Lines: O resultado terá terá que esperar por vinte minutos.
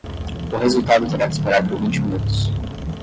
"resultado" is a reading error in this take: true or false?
false